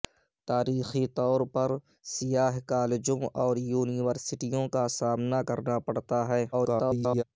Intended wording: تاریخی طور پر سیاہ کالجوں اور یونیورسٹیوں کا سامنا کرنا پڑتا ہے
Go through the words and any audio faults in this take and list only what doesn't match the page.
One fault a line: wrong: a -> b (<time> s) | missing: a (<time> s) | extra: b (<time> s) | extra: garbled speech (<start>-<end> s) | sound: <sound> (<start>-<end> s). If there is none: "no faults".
extra: garbled speech (6.5-7.2 s)